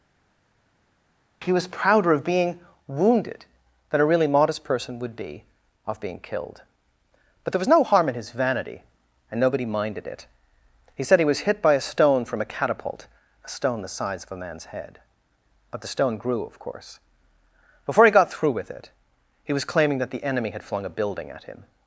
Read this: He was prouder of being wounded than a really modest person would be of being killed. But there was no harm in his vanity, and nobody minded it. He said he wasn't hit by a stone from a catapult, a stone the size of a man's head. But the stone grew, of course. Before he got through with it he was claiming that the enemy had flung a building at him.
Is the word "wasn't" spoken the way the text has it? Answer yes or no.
no